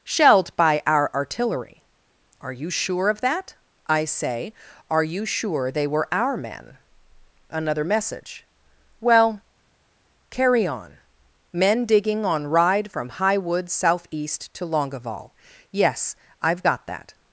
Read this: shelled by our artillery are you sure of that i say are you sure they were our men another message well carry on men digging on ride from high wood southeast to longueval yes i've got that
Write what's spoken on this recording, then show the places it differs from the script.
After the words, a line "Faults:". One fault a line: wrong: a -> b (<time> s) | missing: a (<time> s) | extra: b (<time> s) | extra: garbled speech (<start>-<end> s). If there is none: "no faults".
shelled by our artillery are you sure of that i say are you sure they were our men another message well carry on men digging on ride from high wood southeast to longueval yes i've got that
Faults:
no faults